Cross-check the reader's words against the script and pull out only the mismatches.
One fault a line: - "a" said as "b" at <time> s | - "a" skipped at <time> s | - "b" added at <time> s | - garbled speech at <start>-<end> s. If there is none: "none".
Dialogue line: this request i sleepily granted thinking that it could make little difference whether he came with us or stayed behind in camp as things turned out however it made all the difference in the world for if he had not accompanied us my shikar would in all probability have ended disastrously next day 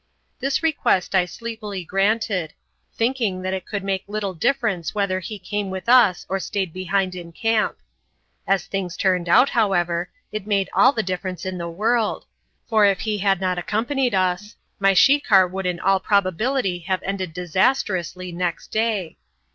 none